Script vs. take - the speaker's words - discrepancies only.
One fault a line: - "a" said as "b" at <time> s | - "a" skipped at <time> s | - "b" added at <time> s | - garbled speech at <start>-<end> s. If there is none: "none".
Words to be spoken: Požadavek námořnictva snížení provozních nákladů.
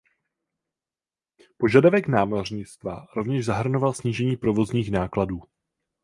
- "rovněž zahrnoval" added at 3.1 s